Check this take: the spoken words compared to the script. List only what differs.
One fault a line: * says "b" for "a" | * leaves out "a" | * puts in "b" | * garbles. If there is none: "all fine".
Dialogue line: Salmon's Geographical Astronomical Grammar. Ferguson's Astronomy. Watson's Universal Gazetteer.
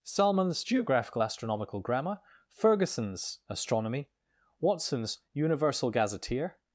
all fine